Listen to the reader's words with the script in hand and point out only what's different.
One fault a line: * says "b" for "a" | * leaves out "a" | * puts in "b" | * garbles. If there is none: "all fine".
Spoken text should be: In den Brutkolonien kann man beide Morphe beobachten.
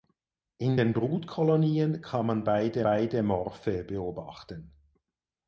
* puts in "beide"